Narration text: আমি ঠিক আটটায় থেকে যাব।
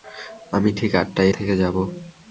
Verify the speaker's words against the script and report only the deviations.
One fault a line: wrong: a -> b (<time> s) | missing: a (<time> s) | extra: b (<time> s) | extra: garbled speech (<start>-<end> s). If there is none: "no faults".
no faults